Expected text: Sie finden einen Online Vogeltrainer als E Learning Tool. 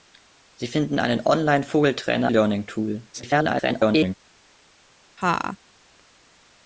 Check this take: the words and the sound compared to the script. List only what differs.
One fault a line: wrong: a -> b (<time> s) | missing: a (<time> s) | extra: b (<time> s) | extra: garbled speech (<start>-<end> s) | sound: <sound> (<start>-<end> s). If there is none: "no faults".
missing: als E (2.3 s)
extra: garbled speech (3.1-4.2 s)
sound: laugh (5.2-5.6 s)